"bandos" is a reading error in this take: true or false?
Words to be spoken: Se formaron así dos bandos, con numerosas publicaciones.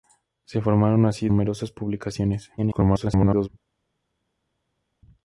true